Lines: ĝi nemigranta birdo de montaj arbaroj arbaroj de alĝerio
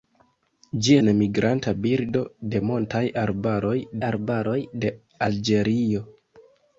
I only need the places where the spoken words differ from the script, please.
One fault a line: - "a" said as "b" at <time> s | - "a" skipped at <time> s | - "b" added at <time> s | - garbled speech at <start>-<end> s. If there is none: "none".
none